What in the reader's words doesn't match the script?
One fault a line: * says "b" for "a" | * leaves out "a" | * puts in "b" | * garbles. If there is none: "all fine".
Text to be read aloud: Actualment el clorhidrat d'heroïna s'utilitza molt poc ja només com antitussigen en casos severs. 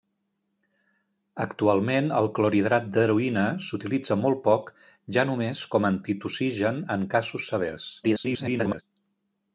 * garbles